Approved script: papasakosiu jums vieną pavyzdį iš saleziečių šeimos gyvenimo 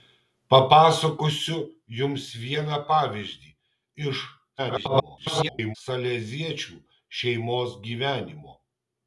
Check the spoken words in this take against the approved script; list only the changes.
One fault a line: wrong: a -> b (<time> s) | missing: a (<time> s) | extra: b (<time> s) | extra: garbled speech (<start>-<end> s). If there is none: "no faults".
extra: garbled speech (4.6-5.8 s)